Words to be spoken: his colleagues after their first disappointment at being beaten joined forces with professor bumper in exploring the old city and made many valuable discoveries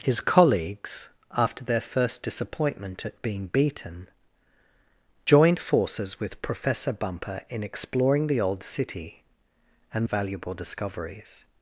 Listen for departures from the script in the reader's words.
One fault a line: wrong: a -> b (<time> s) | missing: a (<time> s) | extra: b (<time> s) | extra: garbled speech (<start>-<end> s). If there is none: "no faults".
missing: made many (10.1 s)